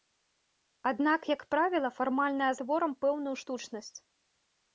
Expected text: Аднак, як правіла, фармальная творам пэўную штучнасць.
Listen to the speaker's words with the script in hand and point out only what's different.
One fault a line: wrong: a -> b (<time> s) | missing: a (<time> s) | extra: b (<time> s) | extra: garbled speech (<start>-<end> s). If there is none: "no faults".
no faults